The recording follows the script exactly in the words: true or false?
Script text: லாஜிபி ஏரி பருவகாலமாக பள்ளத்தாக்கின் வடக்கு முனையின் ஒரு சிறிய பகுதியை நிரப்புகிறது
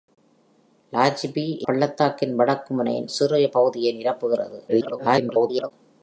false